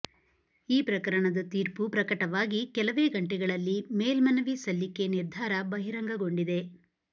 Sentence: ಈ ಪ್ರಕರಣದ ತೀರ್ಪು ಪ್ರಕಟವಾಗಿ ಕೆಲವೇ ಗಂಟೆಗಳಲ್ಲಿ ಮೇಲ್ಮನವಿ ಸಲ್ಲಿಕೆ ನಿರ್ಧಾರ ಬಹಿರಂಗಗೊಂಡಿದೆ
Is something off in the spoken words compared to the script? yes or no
no